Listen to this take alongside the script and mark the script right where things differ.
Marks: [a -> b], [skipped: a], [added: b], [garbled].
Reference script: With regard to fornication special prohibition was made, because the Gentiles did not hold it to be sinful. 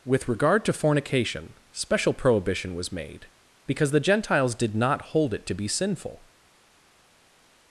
With regard to fornication special prohibition was made, because the Gentiles did not hold it to be sinful.